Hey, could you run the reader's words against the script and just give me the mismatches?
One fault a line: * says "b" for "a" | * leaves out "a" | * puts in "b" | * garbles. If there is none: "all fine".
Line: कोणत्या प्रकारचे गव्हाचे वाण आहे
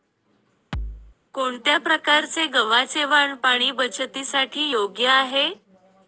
* puts in "पाणी बचतीसाठी योग्य"